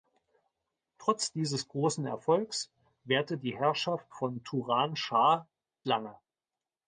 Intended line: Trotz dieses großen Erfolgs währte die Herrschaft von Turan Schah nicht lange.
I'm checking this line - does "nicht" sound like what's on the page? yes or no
no